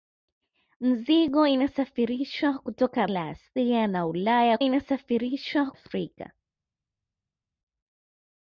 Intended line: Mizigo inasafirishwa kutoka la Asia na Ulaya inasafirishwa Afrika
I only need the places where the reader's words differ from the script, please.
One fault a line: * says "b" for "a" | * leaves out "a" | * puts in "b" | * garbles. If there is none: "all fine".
all fine